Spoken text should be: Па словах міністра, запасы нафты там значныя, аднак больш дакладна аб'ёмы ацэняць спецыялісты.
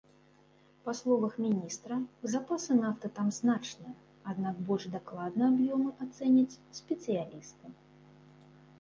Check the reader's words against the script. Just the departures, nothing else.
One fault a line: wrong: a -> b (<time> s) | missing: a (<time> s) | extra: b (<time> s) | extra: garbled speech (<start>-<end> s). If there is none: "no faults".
no faults